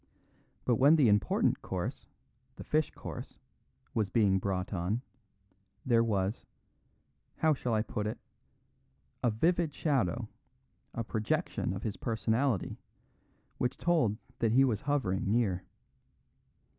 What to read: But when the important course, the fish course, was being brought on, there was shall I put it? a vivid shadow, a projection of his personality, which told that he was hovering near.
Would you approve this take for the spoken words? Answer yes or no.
no